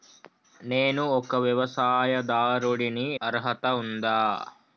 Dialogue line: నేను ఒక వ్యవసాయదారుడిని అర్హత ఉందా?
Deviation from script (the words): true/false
false